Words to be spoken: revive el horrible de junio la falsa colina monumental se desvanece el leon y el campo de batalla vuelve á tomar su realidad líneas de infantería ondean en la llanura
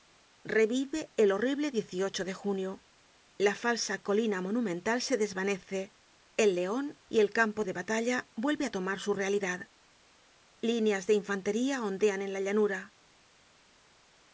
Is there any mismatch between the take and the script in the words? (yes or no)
no